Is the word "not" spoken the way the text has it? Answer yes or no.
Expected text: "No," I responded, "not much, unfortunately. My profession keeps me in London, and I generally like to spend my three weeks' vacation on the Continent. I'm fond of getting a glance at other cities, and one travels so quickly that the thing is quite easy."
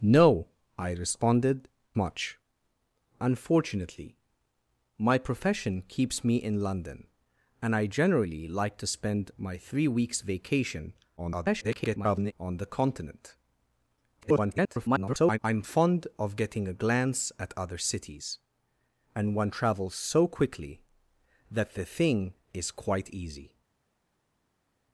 no